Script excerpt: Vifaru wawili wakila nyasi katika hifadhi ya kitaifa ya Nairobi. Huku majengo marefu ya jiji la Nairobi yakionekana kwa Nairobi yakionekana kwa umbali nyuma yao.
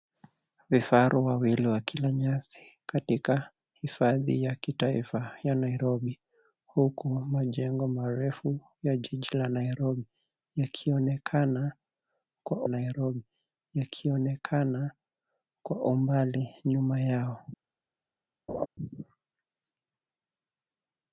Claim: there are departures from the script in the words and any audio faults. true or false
true